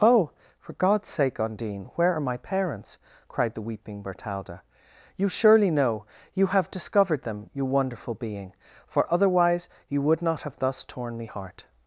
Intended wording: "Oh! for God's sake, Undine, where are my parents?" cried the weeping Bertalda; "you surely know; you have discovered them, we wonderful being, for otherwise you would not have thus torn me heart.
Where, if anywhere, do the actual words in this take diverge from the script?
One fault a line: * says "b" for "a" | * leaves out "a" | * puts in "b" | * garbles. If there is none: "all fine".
* says "you" for "we"